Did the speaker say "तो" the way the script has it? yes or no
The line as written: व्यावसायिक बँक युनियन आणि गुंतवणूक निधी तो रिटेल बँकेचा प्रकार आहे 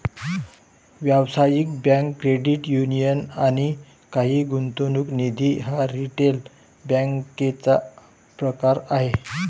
no